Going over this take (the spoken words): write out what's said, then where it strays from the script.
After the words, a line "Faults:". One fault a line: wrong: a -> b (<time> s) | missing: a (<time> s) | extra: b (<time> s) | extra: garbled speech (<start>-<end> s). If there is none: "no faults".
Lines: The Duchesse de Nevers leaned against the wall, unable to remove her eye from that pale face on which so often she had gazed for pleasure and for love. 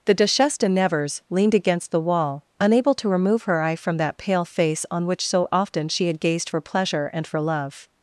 The Duchesse de Nevers leaned against the wall, unable to remove her eye from that pale face on which so often she had gazed for pleasure and for love.
Faults:
no faults